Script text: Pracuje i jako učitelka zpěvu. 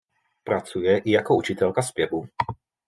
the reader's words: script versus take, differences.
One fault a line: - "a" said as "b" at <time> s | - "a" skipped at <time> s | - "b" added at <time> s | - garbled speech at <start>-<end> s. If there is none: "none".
none